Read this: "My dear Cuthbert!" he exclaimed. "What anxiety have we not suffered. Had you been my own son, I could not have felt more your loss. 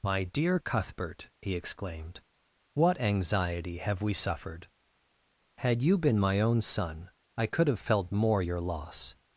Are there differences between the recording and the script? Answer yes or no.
yes